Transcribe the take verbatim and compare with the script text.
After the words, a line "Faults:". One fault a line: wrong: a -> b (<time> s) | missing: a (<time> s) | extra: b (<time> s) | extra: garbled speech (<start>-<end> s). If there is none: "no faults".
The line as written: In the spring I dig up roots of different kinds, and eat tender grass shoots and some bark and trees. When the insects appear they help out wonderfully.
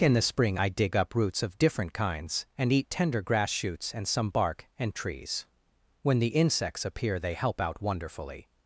In the spring I dig up roots of different kinds, and eat tender grass shoots and some bark and trees. When the insects appear they help out wonderfully.
Faults:
no faults